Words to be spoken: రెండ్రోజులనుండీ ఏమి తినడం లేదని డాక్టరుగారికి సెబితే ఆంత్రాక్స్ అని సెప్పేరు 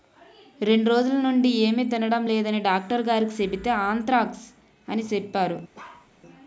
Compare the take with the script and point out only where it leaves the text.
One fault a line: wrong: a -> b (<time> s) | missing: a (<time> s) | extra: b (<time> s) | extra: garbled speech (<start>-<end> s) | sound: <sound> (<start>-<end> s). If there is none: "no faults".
sound: bark (5.7-6.1 s)